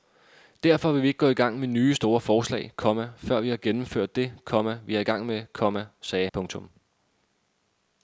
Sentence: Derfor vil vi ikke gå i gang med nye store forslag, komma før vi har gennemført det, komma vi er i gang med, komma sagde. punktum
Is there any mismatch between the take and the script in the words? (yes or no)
no